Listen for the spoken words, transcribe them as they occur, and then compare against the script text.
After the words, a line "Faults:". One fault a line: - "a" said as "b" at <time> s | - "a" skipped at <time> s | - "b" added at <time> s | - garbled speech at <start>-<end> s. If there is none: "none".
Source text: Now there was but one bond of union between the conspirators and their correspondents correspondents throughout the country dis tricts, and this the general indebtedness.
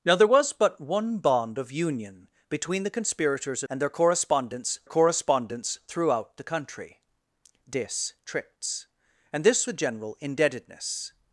Now there was but one bond of union between the conspirators and their correspondents correspondents throughout the country dis tricts, and this the general indebtedness.
Faults:
none